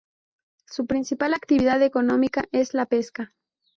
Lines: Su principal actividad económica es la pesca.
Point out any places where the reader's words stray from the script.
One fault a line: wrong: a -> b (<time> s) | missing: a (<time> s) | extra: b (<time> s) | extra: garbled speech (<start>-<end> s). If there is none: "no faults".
no faults